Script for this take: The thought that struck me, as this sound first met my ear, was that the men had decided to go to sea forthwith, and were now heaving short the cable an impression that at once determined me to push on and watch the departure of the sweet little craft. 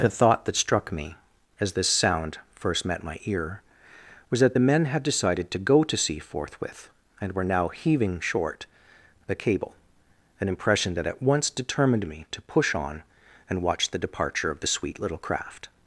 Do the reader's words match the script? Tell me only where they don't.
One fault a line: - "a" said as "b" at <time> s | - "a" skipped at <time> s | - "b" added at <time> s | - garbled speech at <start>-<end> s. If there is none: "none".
none